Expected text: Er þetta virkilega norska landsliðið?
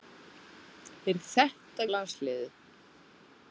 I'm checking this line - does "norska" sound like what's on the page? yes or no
no